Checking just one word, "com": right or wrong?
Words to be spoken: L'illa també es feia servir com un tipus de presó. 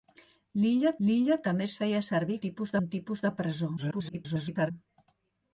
wrong